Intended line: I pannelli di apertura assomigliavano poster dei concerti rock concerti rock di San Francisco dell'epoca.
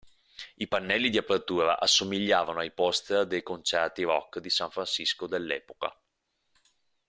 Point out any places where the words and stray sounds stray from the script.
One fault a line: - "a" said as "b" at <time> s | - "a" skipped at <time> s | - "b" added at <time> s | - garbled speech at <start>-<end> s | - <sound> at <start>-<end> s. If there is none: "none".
- "ai" added at 2.6 s
- "concerti rock" skipped at 4.4 s